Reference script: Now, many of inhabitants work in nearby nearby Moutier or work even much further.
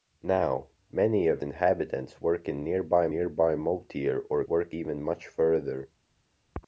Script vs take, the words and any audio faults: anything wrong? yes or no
no